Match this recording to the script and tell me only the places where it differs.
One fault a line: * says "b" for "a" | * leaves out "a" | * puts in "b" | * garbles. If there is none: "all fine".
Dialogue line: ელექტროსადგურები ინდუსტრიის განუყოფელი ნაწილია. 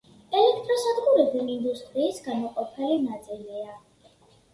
all fine